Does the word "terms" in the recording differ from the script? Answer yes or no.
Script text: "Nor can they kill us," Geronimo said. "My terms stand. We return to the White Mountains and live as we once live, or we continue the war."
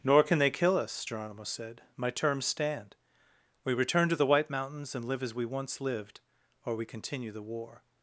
no